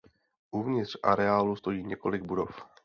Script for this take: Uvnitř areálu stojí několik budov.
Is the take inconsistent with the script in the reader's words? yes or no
no